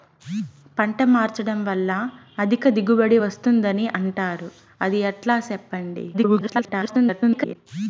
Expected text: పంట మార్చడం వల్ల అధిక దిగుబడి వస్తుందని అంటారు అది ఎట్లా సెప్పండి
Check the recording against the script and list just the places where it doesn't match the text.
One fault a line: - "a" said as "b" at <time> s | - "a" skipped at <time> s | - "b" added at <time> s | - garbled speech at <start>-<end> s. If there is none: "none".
- garbled speech at 6.1-7.6 s